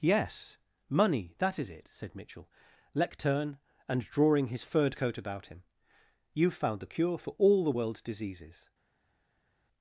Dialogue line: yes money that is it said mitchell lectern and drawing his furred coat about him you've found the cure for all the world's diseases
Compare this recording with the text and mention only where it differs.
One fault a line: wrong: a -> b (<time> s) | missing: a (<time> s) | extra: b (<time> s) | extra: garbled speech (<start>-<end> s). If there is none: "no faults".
no faults